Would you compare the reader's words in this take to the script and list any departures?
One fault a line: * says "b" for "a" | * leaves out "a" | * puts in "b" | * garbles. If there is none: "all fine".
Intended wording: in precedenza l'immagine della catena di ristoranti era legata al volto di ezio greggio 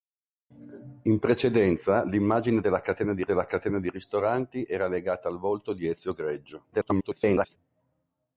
* puts in "della catena di"
* garbles